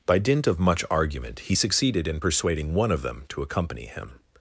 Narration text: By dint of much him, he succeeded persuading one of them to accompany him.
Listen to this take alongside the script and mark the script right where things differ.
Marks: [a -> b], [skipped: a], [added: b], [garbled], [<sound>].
By dint of much [him, -> argument] he succeeded [added: in] persuading one of them to accompany him.